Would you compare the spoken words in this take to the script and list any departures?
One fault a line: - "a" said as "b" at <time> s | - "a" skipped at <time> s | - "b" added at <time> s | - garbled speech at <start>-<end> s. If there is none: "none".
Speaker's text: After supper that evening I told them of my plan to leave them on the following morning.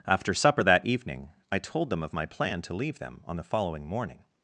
none